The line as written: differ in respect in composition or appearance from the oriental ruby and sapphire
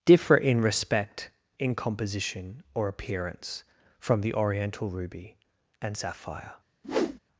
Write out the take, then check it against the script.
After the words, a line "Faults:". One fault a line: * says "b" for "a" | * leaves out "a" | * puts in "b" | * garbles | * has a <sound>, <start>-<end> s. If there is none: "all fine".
differ in respect in composition or appearance from the oriental ruby and sapphire
Faults:
* has a whoosh, 6.8-7.2 s